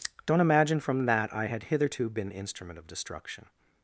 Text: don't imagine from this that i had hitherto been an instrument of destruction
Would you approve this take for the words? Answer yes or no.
no